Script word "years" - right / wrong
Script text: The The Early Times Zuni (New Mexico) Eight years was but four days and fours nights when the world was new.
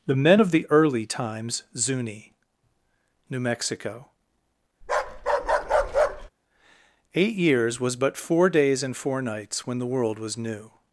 right